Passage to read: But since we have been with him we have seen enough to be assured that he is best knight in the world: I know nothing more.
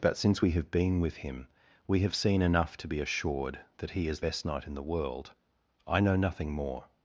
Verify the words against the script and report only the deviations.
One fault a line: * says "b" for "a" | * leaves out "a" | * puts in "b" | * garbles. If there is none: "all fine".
all fine